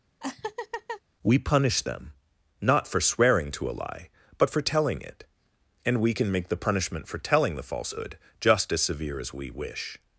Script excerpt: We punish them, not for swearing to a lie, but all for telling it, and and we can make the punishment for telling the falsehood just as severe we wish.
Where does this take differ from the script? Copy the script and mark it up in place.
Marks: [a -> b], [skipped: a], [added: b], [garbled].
We punish them, not for swearing to a lie, but [skipped: all] for telling it, and [skipped: and] we can make the punishment for telling the falsehood just as severe [added: as] we wish.